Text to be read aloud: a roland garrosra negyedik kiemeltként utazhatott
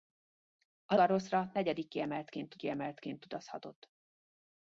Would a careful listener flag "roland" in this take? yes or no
yes